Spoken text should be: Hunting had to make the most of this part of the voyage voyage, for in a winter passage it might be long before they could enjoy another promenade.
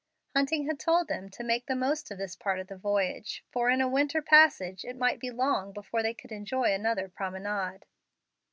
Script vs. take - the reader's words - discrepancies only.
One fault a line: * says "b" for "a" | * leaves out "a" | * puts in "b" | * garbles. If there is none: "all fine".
* puts in "told them"
* leaves out "voyage"